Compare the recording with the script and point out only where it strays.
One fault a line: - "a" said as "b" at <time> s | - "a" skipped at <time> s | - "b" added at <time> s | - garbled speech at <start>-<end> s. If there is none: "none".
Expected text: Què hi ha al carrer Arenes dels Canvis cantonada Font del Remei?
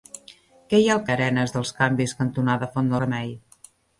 - "carrer" skipped at 1.0 s
- "del" skipped at 3.0 s